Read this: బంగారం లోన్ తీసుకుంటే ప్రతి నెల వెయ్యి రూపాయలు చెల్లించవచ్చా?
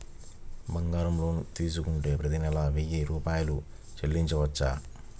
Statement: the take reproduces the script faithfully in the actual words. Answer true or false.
true